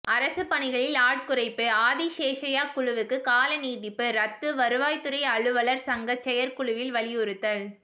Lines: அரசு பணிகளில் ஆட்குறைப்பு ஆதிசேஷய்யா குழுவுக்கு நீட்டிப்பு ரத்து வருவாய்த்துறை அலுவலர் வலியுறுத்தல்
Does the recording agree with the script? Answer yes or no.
no